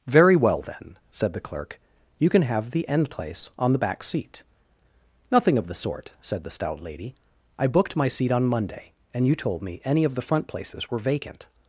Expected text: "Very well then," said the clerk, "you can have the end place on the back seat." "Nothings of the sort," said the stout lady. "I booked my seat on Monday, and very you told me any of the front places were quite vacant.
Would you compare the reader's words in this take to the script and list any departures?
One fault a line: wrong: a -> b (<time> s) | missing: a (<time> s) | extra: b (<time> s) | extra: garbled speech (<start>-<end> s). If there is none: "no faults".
wrong: Nothings -> Nothing (5.3 s)
missing: very (9.3 s)
missing: quite (11.0 s)